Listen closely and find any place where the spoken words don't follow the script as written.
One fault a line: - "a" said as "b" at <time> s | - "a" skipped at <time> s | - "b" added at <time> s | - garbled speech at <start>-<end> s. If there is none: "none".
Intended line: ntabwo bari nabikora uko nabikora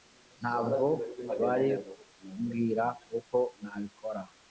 - "nabikora" said as "kumbwira" at 2.1 s